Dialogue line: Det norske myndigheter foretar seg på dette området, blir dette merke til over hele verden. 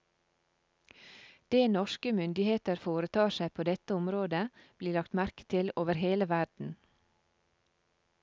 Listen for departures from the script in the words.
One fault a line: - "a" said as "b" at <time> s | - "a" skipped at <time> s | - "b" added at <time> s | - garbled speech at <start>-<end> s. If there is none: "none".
- "dette" said as "lagt" at 5.0 s